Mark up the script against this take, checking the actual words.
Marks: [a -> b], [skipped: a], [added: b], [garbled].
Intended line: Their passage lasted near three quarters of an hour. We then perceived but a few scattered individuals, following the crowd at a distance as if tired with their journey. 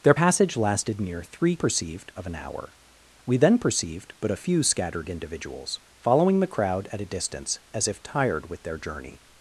Their passage lasted near three [quarters -> perceived] of an hour. We then perceived but a few scattered individuals, following the crowd at a distance as if tired with their journey.